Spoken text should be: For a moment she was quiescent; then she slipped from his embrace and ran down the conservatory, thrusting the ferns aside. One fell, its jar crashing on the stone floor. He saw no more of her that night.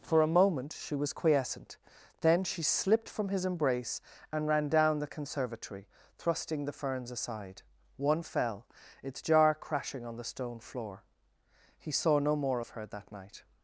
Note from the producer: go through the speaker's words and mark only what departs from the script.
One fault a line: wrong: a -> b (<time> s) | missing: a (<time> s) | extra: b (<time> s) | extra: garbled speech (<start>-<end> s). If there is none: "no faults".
no faults